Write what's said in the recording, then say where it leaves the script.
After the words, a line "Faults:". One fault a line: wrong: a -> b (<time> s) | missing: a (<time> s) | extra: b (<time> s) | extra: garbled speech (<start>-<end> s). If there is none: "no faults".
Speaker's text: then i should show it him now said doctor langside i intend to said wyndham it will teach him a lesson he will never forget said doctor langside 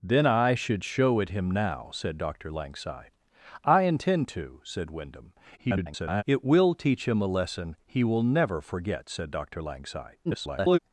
then i should show it him now said doctor langside i intend to said wyndham [garbled] it will teach him a lesson he will never forget said doctor langside [garbled]
Faults:
extra: garbled speech (5.6-6.2 s)
extra: garbled speech (10.2-10.8 s)